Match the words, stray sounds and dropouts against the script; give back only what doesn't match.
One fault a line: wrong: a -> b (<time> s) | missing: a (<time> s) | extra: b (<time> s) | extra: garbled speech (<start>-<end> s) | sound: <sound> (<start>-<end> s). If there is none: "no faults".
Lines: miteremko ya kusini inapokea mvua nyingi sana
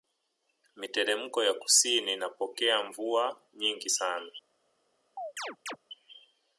sound: chirp (5.2-5.8 s)